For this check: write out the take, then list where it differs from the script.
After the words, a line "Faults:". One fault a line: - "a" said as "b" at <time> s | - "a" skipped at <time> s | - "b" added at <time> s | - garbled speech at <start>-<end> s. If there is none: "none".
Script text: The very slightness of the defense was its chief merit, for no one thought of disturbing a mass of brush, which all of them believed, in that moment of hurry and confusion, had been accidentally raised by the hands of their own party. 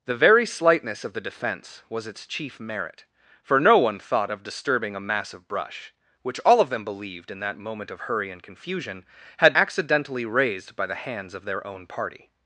The very slightness of the defense was its chief merit, for no one thought of disturbing a mass of brush, which all of them believed, in that moment of hurry and confusion, had accidentally raised by the hands of their own party.
Faults:
- "been" skipped at 9.5 s